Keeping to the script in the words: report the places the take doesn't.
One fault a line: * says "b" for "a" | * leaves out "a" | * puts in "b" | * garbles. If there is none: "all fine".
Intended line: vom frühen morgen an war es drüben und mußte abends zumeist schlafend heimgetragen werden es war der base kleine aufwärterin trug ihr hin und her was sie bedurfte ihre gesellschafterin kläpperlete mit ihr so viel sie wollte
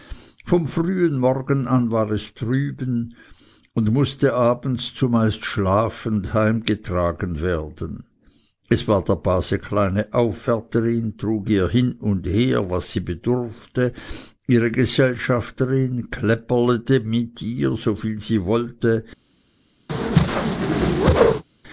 all fine